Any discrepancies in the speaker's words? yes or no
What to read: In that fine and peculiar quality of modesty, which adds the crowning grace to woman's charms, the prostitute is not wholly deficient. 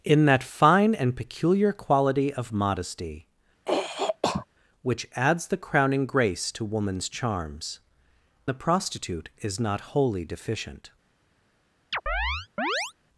no